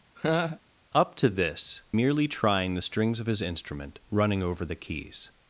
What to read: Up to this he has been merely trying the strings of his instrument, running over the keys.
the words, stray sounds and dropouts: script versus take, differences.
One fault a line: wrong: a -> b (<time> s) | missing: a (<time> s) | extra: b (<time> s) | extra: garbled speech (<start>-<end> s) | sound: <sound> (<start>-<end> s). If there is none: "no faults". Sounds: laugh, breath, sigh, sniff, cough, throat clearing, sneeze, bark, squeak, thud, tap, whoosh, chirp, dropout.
sound: laugh (0.1-0.6 s)
missing: he has been (1.8 s)